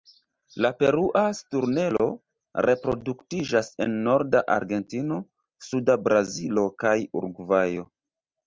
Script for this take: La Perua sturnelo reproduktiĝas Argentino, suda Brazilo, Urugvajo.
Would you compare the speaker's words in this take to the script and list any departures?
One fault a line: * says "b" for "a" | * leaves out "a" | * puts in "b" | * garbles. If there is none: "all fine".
* puts in "en norda"
* puts in "kaj"